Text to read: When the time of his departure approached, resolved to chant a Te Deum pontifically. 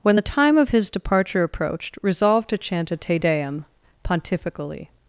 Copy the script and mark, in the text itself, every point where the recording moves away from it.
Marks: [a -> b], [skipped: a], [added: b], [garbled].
When the time of his departure approached, resolved to chant a Te Deum pontifically.